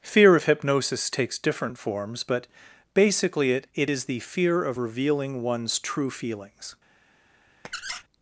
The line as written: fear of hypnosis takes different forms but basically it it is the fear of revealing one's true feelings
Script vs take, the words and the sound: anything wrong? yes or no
yes